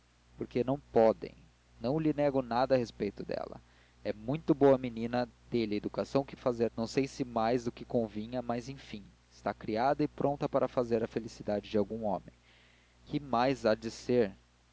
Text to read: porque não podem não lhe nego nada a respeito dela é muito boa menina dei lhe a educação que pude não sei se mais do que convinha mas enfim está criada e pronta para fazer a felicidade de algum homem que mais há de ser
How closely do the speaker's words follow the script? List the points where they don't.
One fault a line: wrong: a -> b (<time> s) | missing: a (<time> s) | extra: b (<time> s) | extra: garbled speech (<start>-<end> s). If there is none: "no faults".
wrong: pude -> fazer (6.4 s)